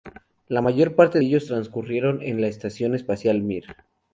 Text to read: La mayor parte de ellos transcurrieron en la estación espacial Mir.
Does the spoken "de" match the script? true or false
false